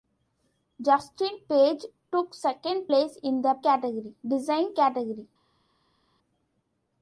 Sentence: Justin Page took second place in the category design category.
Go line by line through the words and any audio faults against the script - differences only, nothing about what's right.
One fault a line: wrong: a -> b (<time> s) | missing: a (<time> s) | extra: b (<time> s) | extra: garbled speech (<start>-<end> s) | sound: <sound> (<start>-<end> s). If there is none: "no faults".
no faults